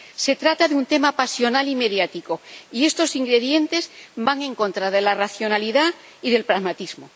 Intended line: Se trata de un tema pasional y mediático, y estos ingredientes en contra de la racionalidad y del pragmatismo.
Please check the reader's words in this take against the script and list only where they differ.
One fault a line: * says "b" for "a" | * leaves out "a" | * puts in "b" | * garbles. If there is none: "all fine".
* puts in "van"